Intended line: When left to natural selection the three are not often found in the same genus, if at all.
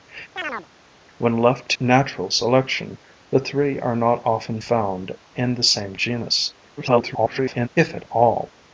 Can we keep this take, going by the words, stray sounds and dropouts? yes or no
no